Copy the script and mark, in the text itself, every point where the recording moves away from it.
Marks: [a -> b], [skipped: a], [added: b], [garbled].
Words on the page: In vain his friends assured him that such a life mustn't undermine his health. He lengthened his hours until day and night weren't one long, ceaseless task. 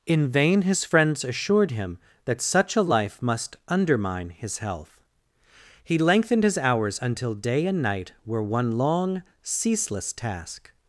In vain his friends assured him that such a life [mustn't -> must] undermine his health. He lengthened his hours until day and night [weren't -> were] one long, ceaseless task.